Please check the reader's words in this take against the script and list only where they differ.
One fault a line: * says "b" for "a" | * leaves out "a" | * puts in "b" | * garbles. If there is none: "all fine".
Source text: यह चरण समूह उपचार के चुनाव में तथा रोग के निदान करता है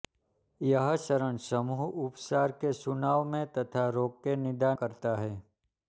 all fine